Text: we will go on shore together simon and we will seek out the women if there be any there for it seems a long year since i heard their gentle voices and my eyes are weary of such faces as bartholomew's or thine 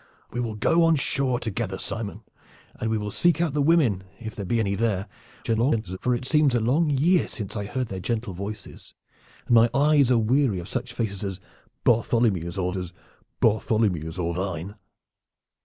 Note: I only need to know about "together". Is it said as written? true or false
true